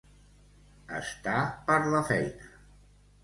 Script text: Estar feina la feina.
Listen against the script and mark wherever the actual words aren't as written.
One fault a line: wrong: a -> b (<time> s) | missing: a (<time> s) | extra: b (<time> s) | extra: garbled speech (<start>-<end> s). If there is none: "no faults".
wrong: feina -> per (1.7 s)